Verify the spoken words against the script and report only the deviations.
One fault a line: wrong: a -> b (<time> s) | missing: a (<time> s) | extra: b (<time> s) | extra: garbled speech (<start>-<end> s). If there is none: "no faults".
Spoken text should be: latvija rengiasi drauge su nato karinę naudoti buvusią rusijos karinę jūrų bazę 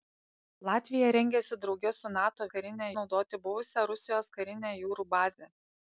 no faults